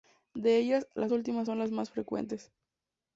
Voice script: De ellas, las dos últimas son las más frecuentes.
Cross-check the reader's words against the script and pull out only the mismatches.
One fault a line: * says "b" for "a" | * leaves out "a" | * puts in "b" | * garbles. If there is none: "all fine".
* leaves out "dos"